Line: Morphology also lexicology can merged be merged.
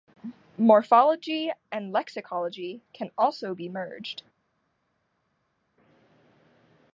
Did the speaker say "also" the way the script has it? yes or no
no